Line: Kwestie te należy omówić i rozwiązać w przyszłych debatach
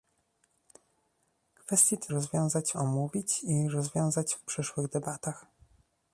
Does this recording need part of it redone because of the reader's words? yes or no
yes